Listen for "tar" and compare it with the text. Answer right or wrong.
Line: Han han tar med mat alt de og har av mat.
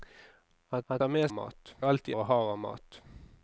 right